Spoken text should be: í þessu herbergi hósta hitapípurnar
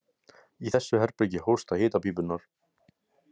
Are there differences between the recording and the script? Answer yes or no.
no